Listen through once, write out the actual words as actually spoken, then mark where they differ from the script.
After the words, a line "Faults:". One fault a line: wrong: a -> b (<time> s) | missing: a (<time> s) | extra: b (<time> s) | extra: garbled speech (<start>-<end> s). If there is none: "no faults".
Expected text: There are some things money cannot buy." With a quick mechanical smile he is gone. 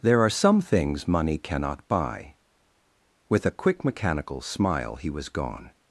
There are some things money cannot buy." With a quick mechanical smile he was gone.
Faults:
wrong: is -> was (5.1 s)